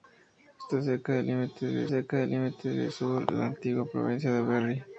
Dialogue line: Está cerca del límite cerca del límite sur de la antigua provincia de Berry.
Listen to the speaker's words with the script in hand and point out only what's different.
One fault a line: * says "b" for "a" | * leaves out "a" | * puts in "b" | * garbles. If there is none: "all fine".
all fine